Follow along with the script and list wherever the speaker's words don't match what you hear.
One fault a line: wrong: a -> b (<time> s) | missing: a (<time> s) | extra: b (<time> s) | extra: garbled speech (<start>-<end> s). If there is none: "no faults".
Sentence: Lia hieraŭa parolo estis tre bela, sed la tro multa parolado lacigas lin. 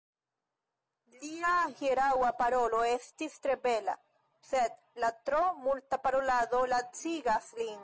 no faults